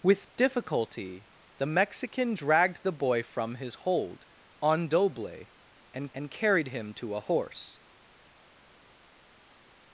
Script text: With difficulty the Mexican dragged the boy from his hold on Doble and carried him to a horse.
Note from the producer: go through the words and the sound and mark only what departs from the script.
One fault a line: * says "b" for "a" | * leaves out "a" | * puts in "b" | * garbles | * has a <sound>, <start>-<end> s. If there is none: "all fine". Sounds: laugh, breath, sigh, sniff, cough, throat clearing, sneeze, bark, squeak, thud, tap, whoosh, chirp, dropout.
* puts in "and"